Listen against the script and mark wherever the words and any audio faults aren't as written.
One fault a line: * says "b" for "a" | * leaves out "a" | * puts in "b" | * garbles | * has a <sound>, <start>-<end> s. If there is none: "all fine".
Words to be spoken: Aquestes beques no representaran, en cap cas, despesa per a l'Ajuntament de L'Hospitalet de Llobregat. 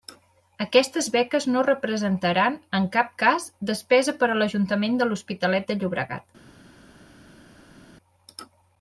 all fine